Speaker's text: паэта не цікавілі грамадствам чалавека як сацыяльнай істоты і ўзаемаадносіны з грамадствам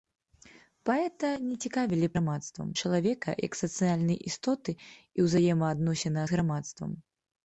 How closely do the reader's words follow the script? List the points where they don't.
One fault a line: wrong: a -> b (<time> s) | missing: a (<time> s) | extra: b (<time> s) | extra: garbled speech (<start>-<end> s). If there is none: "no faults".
no faults